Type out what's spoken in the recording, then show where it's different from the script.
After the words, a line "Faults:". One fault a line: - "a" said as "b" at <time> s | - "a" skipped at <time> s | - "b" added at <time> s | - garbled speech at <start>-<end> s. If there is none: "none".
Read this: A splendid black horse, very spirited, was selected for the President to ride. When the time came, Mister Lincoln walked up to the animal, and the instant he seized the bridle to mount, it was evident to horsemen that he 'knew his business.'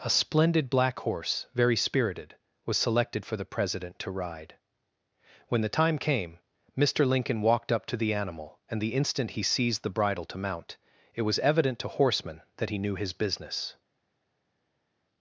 A splendid black horse, very spirited, was selected for the President to ride. When the time came, Mister Lincoln walked up to the animal, and the instant he seized the bridle to mount, it was evident to horsemen that he 'knew his business.'
Faults:
none